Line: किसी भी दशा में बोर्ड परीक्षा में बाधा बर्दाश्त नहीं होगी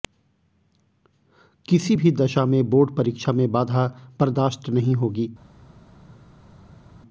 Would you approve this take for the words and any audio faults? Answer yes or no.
yes